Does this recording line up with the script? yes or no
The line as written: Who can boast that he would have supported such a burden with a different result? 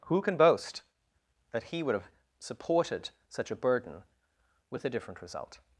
yes